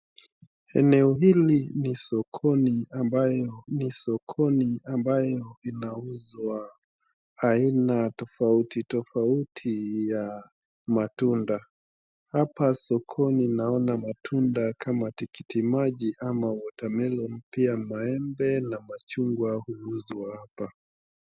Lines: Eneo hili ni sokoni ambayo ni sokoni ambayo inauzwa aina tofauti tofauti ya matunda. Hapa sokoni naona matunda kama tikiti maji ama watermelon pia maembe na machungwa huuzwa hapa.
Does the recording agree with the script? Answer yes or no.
yes